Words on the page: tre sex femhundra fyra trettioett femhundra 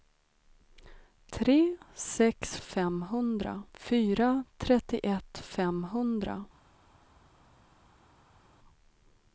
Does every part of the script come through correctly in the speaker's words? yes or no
yes